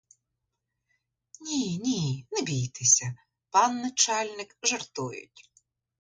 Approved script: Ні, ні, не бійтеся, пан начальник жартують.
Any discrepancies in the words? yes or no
no